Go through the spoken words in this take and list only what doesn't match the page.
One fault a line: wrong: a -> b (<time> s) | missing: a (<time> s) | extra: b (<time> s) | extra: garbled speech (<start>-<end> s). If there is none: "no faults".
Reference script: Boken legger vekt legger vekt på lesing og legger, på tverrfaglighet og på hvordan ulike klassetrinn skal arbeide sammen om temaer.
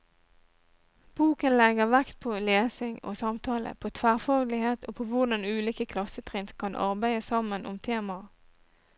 missing: legger vekt (2.1 s)
wrong: legger -> samtale (3.2 s)
wrong: skal -> kan (6.6 s)